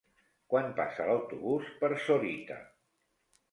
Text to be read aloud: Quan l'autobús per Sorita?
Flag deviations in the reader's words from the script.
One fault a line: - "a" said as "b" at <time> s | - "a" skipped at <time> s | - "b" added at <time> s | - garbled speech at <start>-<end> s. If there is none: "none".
- "passa" added at 0.8 s